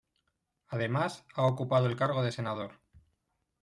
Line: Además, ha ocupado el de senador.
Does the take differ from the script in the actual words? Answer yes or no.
yes